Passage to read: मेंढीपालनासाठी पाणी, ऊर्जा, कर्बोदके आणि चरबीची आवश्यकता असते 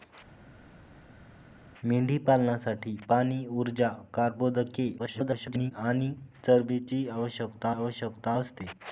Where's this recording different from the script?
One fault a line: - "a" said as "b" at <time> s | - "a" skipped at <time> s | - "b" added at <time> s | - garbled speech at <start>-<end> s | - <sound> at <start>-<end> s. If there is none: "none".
- garbled speech at 5.0-5.7 s
- "आवश्यकता" added at 7.7 s